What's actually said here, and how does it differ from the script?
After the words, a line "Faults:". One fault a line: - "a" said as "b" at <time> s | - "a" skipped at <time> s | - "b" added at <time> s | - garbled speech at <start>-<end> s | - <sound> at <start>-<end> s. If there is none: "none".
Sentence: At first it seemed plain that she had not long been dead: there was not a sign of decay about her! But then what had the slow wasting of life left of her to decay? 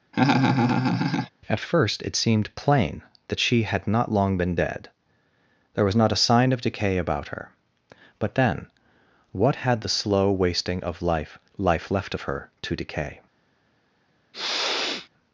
At first it seemed plain that she had not long been dead: there was not a sign of decay about her! But then what had the slow wasting of life life left of her to decay?
Faults:
- laugh at 0.1-1.3 s
- "life" added at 11.6 s
- sniff at 14.3-15.1 s